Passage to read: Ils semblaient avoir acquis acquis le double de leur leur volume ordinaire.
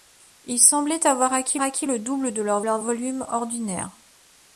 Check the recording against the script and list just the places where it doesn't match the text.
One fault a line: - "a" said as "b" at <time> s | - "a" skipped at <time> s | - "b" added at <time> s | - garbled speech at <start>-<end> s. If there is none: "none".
none